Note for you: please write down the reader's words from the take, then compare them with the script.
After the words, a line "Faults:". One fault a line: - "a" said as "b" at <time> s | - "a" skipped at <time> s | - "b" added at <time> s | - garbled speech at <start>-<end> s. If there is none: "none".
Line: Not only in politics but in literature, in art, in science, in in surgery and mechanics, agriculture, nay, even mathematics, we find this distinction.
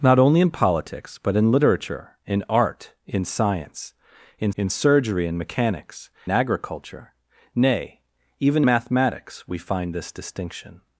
Not only in politics but in literature, in art, in science, in in surgery and mechanics, agriculture, nay, even mathematics, we find this distinction.
Faults:
none